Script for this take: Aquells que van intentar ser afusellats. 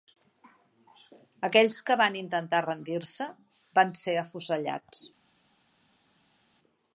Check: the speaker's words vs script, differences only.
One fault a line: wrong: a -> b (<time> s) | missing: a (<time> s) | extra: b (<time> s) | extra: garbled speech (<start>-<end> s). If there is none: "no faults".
extra: rendir se van (2.7 s)